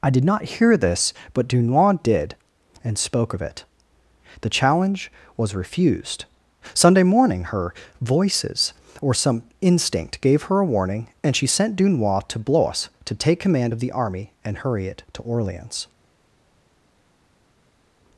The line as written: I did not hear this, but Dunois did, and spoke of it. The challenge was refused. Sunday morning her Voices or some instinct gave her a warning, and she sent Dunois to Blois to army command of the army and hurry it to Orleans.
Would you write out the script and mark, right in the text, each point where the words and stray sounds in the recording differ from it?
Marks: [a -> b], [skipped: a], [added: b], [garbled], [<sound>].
I did not hear this, but Dunois did, and spoke of it. The challenge was refused. Sunday morning her Voices or some instinct gave her a warning, and she sent Dunois to Blois to [army -> take] command of the army and hurry it to Orleans.